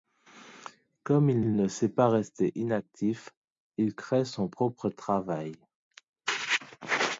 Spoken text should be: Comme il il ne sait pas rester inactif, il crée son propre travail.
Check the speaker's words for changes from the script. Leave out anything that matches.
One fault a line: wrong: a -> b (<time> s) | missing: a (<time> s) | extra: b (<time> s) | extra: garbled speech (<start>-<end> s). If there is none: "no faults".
no faults